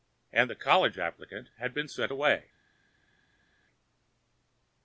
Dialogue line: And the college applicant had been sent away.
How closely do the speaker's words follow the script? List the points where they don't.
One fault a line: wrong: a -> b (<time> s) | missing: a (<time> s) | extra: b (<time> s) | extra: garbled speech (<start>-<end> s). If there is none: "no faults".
no faults